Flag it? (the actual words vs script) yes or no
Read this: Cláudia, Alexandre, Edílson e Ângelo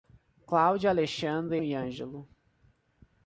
yes